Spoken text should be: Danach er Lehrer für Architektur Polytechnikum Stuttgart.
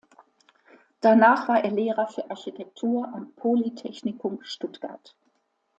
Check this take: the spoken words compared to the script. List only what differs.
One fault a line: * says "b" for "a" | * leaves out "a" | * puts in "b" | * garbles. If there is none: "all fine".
* puts in "war"
* puts in "am"